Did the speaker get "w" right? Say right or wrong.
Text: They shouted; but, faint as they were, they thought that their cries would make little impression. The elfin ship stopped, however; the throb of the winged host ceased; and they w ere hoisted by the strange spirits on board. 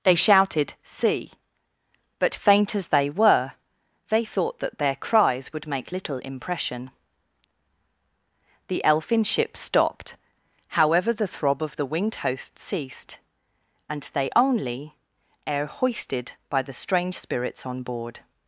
wrong